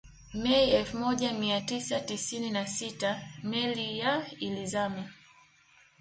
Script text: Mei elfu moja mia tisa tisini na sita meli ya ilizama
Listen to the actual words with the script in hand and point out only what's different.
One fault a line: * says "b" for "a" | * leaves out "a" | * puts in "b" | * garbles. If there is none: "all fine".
all fine